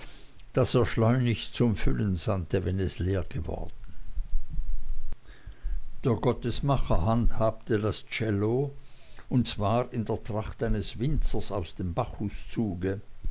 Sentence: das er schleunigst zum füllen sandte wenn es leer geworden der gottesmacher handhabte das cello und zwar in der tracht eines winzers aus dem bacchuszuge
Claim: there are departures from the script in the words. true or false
false